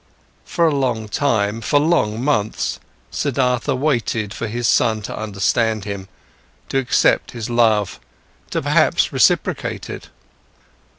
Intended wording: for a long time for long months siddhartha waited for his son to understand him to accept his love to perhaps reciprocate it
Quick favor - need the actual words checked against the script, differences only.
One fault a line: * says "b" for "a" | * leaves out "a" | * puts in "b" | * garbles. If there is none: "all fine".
all fine